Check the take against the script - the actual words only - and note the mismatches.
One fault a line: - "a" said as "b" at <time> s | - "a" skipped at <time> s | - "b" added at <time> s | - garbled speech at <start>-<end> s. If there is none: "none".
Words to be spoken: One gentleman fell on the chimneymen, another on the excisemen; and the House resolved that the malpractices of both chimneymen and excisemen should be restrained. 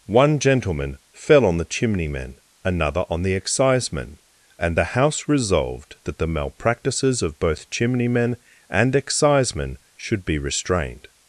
none